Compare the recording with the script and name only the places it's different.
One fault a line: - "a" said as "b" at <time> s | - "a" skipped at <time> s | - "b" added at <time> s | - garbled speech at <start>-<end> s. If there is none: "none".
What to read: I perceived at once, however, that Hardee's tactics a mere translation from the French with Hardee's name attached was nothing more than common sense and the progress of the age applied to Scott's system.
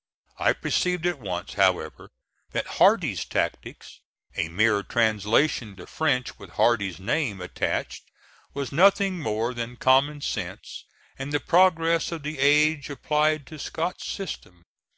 - "from" skipped at 5.8 s